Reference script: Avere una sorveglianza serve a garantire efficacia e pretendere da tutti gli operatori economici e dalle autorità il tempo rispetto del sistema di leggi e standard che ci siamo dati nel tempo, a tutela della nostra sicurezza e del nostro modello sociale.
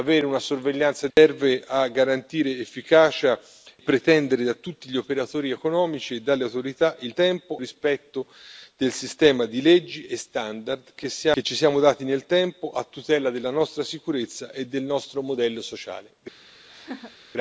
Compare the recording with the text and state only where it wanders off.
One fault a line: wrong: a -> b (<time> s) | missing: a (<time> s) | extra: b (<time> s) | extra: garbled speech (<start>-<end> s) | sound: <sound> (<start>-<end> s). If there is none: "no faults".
sound: laugh (16.7-17.2 s)